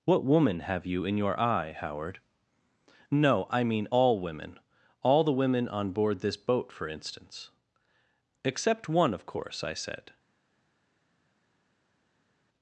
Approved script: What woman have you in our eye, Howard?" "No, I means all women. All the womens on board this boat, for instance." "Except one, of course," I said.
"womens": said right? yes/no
no